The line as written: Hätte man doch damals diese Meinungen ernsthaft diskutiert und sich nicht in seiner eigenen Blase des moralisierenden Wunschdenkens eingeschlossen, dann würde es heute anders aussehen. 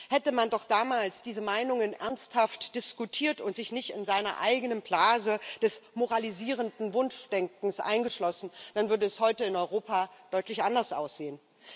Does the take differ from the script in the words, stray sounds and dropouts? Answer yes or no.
yes